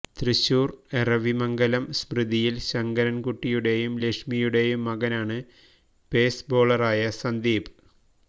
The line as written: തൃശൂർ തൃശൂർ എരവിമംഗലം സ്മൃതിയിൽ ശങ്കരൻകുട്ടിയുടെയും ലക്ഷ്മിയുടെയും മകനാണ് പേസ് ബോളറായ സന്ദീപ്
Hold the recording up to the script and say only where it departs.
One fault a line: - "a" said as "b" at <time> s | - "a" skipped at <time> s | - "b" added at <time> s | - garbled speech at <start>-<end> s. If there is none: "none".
- "തൃശൂർ" skipped at 0.7 s